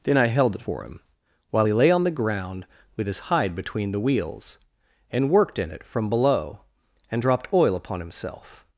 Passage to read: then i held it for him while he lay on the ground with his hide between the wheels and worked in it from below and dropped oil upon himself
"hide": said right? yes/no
yes